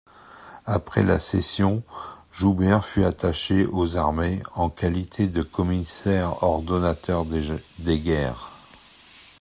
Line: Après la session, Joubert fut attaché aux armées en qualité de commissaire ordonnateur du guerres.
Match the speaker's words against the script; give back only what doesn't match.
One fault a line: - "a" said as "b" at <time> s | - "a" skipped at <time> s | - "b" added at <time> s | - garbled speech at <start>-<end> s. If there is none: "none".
- "du" said as "des" at 7.3 s